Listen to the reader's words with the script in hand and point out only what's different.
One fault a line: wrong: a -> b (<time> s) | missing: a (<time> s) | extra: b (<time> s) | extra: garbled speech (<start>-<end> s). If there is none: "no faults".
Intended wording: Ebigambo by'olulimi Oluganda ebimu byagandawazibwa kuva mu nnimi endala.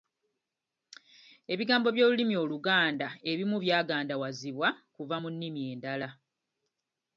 no faults